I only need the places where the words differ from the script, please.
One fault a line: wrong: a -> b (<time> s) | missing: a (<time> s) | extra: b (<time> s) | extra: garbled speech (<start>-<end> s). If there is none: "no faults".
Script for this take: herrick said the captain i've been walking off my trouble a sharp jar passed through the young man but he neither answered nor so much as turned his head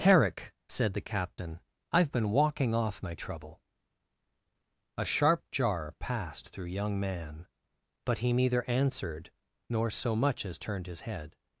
missing: the (6.7 s)